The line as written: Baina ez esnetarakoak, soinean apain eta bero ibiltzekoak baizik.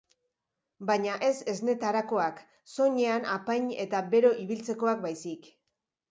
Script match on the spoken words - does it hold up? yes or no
yes